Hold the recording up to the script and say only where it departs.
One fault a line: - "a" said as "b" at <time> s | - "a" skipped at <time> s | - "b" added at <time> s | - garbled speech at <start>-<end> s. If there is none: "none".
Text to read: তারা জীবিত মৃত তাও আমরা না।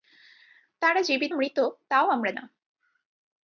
none